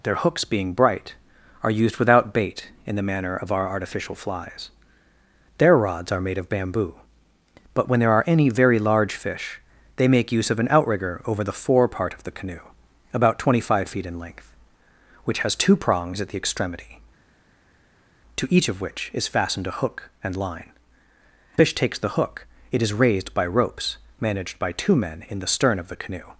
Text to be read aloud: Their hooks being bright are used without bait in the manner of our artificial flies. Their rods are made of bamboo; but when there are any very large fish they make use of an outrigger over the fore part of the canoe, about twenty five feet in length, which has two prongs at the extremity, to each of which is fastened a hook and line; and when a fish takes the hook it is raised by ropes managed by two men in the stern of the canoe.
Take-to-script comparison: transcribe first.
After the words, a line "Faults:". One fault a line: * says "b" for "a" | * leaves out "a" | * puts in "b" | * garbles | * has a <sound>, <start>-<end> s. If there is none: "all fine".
Their hooks being bright are used without bait in the manner of our artificial flies. Their rods are made of bamboo; but when there are any very large fish they make use of an outrigger over the fore part of the canoe, about twenty five feet in length, which has two prongs at the extremity, to each of which is fastened a hook and line; fish takes the hook it is raised by ropes managed by two men in the stern of the canoe.
Faults:
* leaves out "and when a"